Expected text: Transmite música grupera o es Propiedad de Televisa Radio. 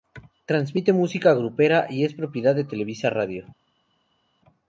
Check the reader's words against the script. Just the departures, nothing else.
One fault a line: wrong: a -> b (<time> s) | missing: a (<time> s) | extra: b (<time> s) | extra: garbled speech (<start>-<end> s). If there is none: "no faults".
wrong: o -> y (1.9 s)